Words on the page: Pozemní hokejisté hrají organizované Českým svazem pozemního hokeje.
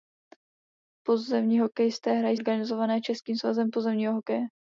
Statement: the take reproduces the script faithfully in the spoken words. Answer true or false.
true